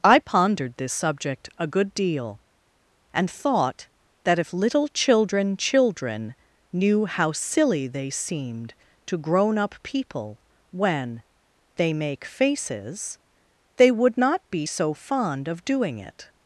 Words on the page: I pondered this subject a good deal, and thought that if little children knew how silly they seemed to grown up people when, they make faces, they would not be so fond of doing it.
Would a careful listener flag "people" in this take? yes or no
no